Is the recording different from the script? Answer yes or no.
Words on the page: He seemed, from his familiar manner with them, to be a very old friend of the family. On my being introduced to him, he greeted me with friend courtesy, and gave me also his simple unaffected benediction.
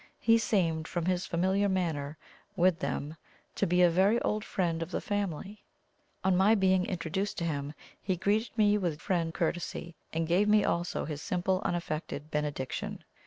no